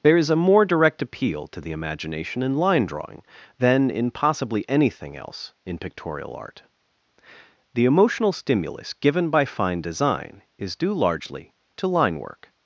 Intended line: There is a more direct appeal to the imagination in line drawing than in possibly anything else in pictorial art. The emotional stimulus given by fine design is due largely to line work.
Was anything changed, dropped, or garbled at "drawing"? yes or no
no